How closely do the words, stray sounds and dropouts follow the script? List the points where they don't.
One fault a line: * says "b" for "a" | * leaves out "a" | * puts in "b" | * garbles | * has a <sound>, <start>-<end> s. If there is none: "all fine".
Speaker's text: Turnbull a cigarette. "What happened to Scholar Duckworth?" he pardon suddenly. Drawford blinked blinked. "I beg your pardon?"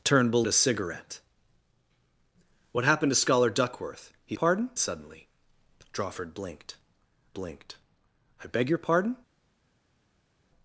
all fine